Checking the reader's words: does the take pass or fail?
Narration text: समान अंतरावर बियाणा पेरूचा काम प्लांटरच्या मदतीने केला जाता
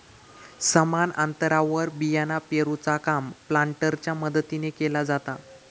pass